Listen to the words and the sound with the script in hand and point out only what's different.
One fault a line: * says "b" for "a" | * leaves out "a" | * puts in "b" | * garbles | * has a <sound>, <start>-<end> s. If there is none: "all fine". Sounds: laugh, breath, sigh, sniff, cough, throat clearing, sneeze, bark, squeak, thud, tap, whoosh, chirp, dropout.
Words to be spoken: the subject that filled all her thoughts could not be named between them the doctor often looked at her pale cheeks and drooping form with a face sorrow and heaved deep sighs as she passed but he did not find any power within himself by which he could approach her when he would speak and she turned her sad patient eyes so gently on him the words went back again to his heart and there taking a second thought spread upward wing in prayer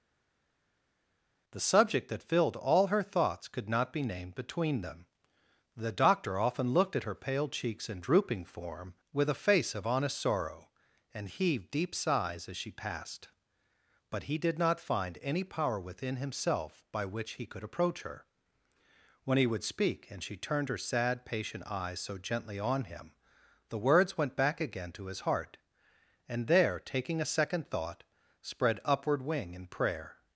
* puts in "of honest"